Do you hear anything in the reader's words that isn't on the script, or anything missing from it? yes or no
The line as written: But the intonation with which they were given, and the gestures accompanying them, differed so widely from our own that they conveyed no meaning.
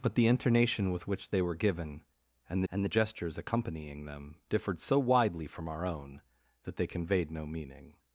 yes